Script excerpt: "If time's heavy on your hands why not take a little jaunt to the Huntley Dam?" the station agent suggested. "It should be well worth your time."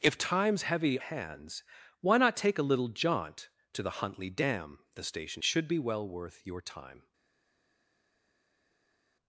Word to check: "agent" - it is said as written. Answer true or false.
false